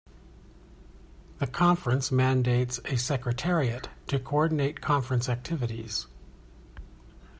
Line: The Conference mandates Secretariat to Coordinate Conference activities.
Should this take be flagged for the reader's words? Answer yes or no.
yes